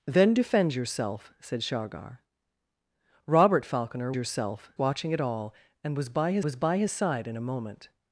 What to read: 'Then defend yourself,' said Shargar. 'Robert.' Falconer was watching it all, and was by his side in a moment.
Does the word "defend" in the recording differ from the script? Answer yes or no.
no